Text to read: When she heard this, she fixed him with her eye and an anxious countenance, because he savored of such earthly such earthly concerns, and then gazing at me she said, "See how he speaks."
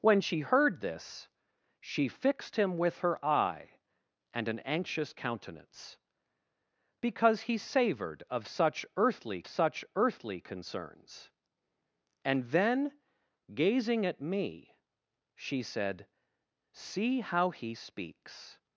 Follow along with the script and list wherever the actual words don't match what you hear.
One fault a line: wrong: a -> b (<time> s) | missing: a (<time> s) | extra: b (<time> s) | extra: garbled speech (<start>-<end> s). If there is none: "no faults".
no faults